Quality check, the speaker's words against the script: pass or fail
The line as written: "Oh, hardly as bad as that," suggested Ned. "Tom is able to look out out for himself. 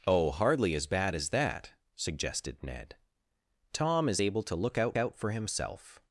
pass